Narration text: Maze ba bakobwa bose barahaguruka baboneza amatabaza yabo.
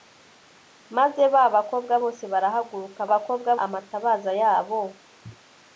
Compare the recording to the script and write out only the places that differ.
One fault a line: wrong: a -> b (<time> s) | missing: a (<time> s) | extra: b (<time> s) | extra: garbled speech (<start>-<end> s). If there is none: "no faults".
wrong: baboneza -> bakobwa (3.1 s)